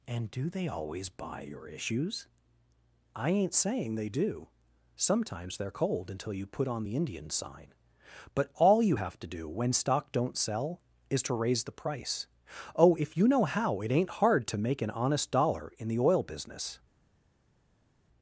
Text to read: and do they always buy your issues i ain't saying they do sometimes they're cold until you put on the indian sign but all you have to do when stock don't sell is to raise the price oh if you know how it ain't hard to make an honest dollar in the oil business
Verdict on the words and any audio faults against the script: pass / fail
pass